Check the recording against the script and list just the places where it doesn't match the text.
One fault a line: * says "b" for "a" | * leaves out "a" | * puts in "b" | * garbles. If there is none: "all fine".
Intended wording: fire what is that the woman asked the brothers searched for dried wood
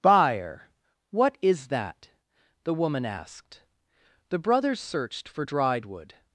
* says "buyer" for "fire"